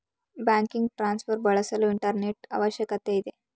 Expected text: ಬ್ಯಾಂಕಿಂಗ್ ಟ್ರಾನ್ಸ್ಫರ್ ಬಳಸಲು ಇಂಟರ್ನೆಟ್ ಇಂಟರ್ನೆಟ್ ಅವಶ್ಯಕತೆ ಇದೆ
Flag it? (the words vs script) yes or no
yes